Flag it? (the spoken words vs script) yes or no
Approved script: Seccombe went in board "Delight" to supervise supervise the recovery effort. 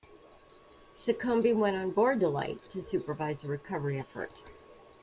yes